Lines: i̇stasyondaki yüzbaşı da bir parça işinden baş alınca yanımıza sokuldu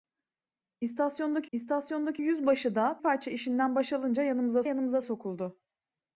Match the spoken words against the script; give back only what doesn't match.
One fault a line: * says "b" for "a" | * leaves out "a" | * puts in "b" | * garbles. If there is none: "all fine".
* puts in "i̇stasyondaki"
* leaves out "bir"
* puts in "yanımıza"